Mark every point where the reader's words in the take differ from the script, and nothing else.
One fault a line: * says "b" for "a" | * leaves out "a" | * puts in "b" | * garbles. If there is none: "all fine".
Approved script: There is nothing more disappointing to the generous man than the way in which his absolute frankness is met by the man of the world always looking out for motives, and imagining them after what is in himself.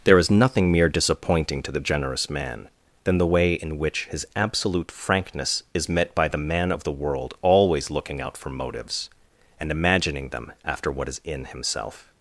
* says "mere" for "more"